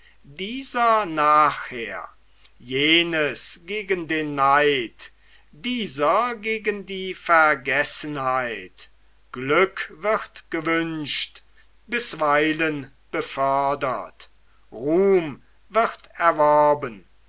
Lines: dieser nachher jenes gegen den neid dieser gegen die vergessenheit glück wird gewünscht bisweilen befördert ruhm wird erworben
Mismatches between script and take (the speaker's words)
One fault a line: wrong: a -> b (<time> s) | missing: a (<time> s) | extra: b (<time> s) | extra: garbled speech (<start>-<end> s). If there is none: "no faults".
no faults